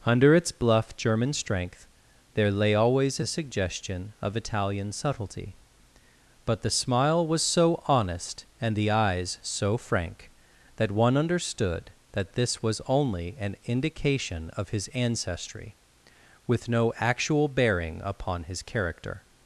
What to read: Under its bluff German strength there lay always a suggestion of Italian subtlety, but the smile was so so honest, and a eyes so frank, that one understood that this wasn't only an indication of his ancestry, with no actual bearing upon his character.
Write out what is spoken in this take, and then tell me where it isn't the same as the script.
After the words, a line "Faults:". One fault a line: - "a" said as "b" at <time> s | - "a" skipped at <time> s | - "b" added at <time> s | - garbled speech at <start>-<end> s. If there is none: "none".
Under its bluff German strength there lay always a suggestion of Italian subtlety, but the smile was so honest, and the eyes so frank, that one understood that this was only an indication of his ancestry, with no actual bearing upon his character.
Faults:
- "so" skipped at 7.8 s
- "a" said as "the" at 8.8 s
- "wasn't" said as "was" at 12.6 s